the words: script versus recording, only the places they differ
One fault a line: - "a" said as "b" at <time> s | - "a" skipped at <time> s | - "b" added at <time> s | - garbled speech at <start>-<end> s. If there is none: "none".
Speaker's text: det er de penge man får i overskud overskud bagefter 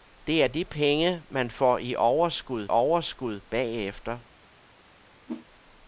none